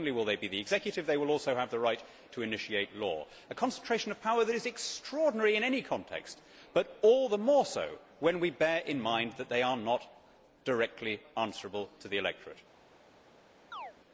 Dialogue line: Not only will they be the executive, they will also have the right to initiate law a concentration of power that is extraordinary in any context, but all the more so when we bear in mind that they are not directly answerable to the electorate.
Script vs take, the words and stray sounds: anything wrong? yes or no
yes